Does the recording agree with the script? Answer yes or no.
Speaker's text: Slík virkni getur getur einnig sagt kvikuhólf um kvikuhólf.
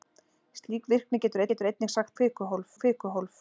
yes